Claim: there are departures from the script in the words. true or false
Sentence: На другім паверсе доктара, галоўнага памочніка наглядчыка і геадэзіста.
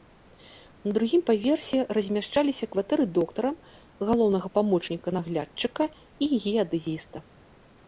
true